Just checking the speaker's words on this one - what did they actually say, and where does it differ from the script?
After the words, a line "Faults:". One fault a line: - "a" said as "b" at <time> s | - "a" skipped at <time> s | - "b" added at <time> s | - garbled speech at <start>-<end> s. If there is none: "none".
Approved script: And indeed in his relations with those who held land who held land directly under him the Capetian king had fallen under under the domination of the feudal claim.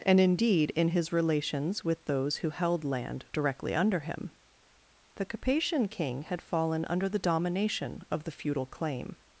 And indeed in his relations with those who held land directly under him the Capetian king had fallen under the domination of the feudal claim.
Faults:
- "who held land" skipped at 3.2 s
- "under" skipped at 7.1 s